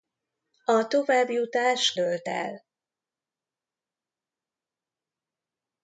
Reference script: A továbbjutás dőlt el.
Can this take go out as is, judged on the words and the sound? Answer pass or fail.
pass